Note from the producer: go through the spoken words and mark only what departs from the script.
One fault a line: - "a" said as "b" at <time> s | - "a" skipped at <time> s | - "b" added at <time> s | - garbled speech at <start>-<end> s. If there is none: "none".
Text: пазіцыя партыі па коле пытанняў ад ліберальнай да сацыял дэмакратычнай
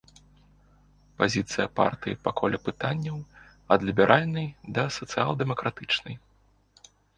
none